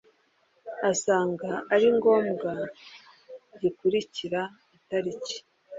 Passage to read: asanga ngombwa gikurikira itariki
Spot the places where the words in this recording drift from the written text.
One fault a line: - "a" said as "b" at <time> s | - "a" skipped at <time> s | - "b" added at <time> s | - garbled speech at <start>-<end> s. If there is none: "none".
- "ari" added at 1.7 s